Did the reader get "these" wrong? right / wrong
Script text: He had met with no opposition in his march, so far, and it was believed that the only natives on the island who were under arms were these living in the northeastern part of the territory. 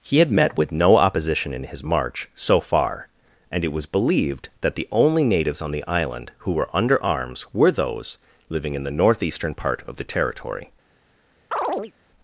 wrong